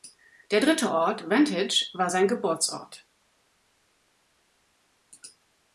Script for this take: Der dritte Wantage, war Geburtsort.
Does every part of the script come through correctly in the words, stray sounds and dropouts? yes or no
no